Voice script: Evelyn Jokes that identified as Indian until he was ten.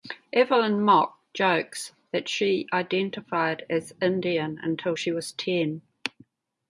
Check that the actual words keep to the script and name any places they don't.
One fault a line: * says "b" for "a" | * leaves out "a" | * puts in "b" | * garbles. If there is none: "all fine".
* puts in "Mok"
* puts in "she"
* says "she" for "he"